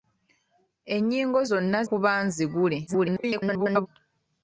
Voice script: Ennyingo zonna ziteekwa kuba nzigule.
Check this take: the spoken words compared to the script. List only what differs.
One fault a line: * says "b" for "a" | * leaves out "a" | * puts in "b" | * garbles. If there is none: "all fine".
* leaves out "ziteekwa"
* garbles